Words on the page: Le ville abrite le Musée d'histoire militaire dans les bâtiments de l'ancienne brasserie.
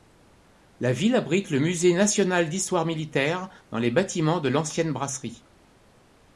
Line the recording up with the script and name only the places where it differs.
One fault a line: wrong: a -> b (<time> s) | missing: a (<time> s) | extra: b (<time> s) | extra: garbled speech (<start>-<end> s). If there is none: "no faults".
wrong: Le -> La (0.8 s)
extra: national (1.9 s)